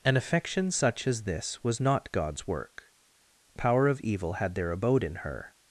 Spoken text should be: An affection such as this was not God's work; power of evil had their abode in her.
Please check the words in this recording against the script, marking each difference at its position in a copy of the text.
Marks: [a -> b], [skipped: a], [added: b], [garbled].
An affection such as this was not God's work; power of evil had their abode in her.